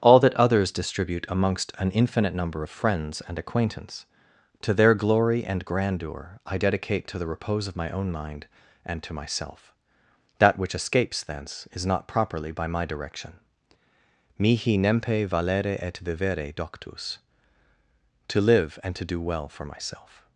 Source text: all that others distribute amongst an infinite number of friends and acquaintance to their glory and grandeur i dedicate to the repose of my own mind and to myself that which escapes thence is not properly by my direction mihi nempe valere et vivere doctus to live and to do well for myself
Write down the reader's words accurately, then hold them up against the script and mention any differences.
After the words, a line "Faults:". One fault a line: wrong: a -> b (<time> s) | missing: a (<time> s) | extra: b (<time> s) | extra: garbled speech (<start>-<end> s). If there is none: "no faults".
all that others distribute amongst an infinite number of friends and acquaintance to their glory and grandeur i dedicate to the repose of my own mind and to myself that which escapes thence is not properly by my direction mihi nempe valere et vivere doctus to live and to do well for myself
Faults:
no faults